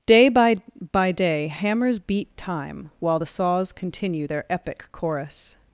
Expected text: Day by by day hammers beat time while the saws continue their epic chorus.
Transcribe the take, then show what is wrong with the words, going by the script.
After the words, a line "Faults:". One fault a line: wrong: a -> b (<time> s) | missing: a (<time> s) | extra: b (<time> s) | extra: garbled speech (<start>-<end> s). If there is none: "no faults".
Day by by day hammers beat time while the saws continue their epic chorus.
Faults:
no faults